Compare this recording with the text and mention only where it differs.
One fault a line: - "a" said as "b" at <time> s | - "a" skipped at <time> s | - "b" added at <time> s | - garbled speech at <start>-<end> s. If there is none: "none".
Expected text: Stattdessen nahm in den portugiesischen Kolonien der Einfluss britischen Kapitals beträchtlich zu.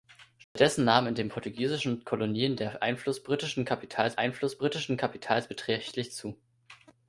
- "Einfluss britischen Kapitals" added at 4.2 s